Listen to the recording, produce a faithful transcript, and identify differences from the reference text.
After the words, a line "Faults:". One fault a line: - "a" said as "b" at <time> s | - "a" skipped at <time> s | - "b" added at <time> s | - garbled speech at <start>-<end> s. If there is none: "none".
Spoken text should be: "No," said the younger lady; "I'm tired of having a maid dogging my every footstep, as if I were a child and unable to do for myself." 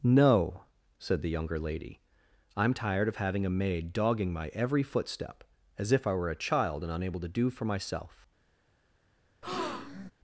"No," said the younger lady; "I'm tired of having a maid dogging my every footstep, as if I were a child and unable to do for myself."
Faults:
none